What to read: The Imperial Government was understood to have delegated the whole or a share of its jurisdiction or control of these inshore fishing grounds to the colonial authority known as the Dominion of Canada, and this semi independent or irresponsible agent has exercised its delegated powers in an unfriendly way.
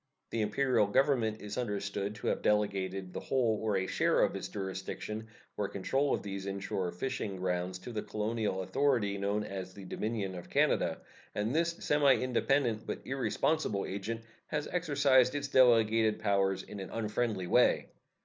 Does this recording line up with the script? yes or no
no